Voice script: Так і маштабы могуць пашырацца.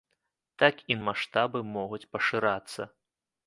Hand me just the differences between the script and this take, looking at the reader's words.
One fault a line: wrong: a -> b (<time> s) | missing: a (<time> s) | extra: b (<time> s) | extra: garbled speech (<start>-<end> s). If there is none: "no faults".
no faults